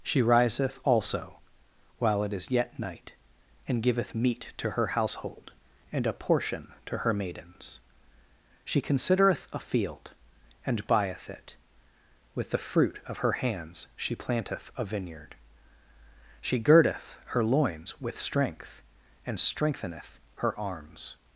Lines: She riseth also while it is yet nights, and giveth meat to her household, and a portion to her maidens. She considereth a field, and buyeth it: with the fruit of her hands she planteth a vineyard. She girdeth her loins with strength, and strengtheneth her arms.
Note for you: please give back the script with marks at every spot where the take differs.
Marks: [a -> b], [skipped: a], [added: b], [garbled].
She riseth also while it is yet [nights, -> night] and giveth meat to her household, and a portion to her maidens. She considereth a field, and buyeth it: with the fruit of her hands she planteth a vineyard. She girdeth her loins with strength, and strengtheneth her arms.